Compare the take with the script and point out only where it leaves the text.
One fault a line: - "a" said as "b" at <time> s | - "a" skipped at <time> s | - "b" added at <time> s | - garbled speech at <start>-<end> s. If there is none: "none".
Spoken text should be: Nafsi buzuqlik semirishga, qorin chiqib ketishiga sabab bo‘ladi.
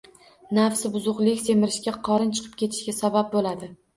none